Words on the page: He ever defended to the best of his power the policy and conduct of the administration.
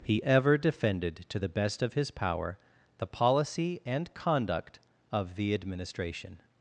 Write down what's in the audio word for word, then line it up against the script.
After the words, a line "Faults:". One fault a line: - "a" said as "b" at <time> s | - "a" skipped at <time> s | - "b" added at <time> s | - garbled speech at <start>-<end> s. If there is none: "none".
He ever defended to the best of his power the policy and conduct of the administration.
Faults:
none